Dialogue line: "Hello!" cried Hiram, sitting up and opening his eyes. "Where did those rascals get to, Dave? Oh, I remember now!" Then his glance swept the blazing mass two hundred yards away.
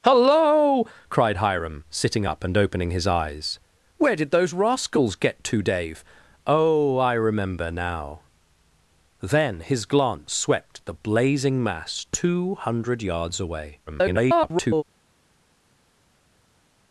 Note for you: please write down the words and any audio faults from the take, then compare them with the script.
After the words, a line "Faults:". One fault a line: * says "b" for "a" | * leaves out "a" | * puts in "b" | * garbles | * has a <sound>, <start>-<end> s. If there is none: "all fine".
"Hello!" cried Hiram, sitting up and opening his eyes. "Where did those rascals get to, Dave? Oh, I remember now!" Then his glance swept the blazing mass two hundred yards away. [garbled]
Faults:
* garbles